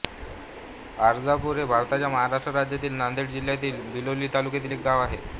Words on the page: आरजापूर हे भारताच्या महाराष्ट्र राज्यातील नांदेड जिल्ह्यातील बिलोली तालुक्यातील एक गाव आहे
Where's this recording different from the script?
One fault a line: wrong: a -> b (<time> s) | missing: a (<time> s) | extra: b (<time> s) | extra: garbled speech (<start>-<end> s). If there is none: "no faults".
no faults